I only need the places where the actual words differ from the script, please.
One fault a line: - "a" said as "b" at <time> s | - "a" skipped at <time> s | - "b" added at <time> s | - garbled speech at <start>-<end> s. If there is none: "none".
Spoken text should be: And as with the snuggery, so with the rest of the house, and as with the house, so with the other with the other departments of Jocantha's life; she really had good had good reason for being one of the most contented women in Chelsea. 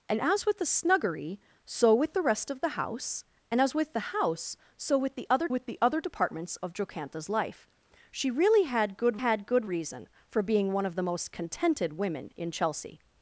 none